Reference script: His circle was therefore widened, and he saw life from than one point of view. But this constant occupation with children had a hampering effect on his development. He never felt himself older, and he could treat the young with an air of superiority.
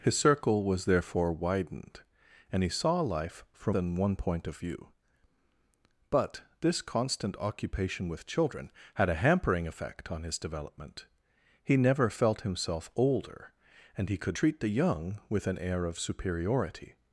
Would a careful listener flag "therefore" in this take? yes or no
no